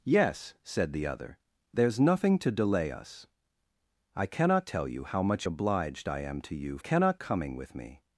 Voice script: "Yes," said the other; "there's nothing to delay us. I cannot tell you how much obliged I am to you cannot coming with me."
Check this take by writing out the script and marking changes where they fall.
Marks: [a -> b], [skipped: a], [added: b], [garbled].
"Yes," said the other; "there's nothing to delay us. I cannot tell you how much obliged I am to you cannot coming with me."